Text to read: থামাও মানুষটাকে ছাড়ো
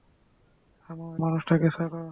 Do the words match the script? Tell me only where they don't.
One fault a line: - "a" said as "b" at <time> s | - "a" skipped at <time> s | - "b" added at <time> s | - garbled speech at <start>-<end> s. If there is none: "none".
none